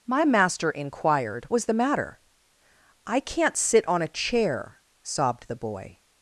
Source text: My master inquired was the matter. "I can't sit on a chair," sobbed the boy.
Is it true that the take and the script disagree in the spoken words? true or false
false